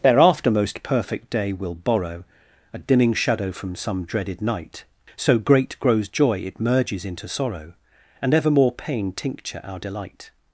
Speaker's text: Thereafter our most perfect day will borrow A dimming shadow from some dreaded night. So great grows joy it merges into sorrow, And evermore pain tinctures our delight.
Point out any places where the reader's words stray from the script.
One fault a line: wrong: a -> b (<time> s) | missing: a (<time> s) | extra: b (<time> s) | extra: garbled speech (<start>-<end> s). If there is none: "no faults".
missing: our (0.5 s)
wrong: tinctures -> tincture (9.1 s)